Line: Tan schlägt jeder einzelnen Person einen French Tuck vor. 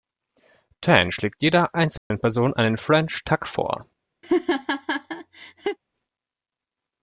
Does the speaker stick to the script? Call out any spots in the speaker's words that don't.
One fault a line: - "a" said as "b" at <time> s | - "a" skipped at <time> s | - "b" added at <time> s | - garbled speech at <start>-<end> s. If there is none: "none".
none